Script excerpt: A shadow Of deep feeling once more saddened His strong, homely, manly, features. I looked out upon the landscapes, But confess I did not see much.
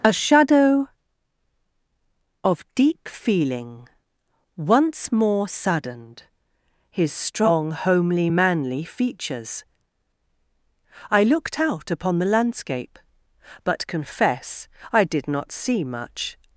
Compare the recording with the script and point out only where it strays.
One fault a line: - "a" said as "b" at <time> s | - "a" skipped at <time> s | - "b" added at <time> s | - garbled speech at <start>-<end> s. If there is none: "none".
- "landscapes" said as "landscape" at 12.3 s